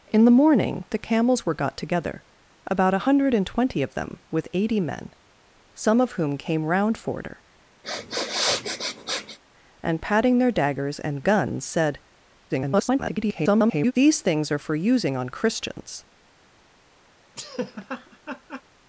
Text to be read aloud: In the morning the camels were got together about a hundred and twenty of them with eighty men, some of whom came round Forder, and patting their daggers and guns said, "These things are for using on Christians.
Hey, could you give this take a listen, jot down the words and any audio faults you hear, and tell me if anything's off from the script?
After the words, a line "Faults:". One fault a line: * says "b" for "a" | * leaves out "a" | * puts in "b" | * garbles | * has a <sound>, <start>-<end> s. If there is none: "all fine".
In the morning the camels were got together about a hundred and twenty of them with eighty men, some of whom came round Forder, and patting their daggers and guns said, [garbled] "These things are for using on Christians.
Faults:
* has a sniff, 7.8-9.4 s
* garbles
* has a laugh, 17.4-18.6 s